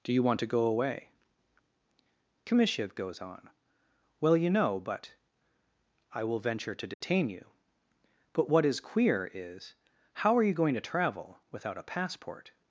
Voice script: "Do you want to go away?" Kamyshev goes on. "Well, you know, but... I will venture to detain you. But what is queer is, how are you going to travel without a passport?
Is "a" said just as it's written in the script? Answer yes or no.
yes